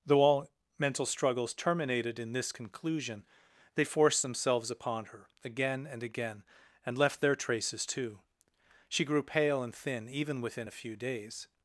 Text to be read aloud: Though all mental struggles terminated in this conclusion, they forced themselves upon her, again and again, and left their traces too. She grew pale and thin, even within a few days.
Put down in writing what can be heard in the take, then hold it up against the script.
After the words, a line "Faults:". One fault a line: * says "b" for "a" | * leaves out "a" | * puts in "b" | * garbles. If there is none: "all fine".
Though all mental struggles terminated in this conclusion, they forced themselves upon her, again and again, and left their traces too. She grew pale and thin, even within a few days.
Faults:
all fine